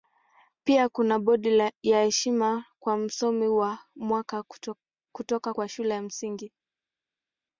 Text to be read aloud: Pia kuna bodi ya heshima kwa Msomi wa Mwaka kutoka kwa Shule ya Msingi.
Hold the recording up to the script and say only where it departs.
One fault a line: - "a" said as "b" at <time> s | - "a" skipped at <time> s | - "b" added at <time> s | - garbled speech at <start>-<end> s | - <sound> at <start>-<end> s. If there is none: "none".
none